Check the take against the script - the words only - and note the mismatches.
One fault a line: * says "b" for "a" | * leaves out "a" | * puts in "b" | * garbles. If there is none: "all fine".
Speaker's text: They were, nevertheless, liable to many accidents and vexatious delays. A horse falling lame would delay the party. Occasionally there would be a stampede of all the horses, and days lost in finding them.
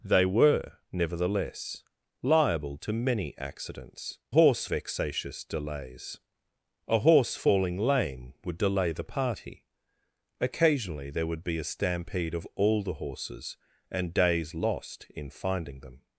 * says "horse" for "and"